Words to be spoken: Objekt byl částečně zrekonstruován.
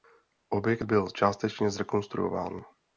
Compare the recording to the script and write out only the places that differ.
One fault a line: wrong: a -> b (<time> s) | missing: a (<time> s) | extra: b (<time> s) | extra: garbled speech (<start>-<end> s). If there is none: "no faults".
no faults